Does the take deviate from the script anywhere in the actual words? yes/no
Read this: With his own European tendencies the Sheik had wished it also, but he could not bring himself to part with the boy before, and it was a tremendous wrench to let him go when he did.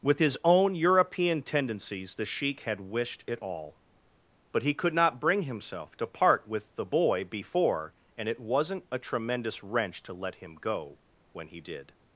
yes